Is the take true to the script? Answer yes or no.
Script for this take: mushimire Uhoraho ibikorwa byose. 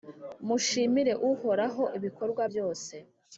yes